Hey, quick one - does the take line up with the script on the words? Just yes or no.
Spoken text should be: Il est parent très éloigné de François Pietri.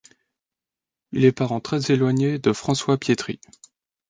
yes